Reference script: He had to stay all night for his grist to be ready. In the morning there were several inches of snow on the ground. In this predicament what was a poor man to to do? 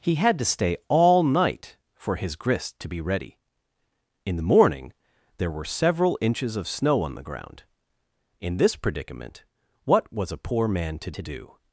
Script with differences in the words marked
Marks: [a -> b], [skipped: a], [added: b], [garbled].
He had to stay all night for his grist to be ready. In the morning there were several inches of snow on the ground. In this predicament what was a poor man to to do?